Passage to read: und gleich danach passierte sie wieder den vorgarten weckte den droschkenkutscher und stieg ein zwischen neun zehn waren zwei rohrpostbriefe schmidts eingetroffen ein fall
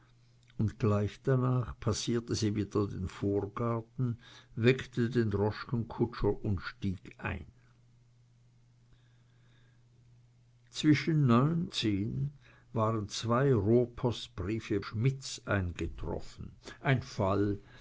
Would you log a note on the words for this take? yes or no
no